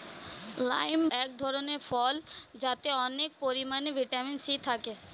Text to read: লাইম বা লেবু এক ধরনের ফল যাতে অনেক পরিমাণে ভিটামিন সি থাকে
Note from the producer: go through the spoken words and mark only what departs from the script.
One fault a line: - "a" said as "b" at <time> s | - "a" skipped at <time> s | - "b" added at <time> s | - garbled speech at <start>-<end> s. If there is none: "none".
- "বা লেবু" skipped at 1.0 s